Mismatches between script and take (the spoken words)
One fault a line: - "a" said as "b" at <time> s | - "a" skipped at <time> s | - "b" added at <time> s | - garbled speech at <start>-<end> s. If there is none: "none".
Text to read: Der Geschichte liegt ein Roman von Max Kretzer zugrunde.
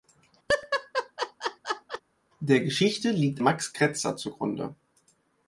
- "ein Roman von" skipped at 3.4 s